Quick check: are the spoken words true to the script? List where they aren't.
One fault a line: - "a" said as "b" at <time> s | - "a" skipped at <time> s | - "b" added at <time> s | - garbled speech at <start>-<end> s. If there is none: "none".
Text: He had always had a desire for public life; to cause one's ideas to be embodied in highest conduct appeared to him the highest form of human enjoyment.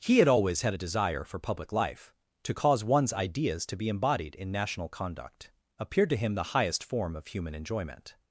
- "highest" said as "national" at 4.5 s